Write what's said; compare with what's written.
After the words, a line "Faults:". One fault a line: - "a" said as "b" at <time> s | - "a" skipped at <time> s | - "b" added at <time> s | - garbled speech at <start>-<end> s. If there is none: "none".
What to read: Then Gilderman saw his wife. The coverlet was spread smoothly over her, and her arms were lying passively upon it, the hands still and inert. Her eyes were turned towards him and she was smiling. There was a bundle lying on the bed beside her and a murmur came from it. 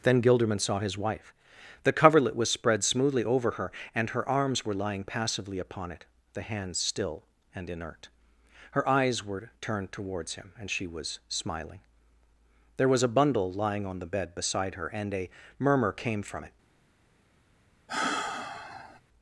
Then Gilderman saw his wife. The coverlet was spread smoothly over her, and her arms were lying passively upon it, the hands still and inert. Her eyes were turned towards him and she was smiling. There was a bundle lying on the bed beside her and a murmur came from it.
Faults:
none